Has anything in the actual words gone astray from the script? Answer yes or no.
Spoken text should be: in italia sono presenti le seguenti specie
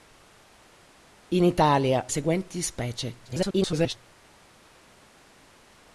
yes